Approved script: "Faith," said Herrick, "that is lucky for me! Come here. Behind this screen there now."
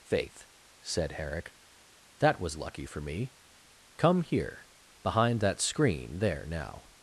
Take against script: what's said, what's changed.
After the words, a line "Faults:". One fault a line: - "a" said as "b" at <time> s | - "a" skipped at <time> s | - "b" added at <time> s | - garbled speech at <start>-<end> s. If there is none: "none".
"Faith," said Herrick, "that was lucky for me! Come here. Behind that screen there now."
Faults:
- "is" said as "was" at 2.4 s
- "this" said as "that" at 5.4 s